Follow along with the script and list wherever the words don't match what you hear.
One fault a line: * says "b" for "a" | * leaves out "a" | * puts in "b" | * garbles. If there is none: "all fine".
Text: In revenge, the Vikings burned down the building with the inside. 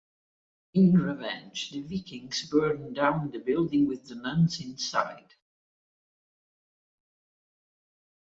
* puts in "nuns"